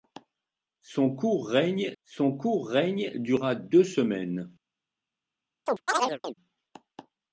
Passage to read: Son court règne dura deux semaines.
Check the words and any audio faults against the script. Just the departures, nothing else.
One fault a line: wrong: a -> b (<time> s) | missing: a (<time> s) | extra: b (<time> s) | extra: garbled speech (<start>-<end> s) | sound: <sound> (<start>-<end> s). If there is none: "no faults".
extra: son court règne (2.0 s)
sound: chirp (5.7-6.3 s)